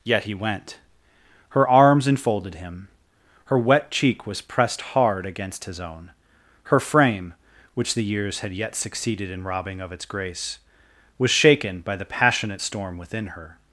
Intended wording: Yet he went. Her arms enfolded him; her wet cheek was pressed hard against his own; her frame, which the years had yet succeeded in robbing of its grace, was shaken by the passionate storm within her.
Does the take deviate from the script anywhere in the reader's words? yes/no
no